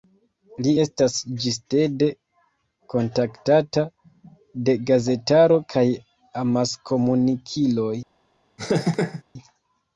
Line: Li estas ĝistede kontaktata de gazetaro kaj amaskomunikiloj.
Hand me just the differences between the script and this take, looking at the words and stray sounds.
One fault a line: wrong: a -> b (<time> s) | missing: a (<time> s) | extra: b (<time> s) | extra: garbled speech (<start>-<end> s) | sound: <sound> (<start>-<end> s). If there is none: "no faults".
sound: laugh (8.6-9.2 s)